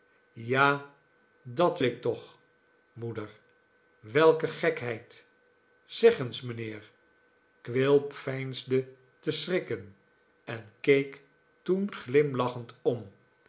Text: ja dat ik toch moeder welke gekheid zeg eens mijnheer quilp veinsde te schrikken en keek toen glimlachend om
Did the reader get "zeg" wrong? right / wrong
right